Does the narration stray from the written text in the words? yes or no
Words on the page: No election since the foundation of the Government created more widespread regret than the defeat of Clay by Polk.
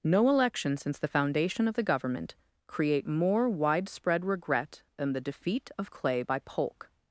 yes